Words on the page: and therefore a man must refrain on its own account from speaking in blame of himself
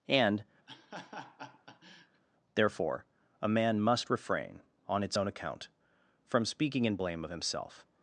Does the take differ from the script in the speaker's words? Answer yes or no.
no